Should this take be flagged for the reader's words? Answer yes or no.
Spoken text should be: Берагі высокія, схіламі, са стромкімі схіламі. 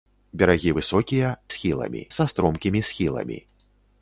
no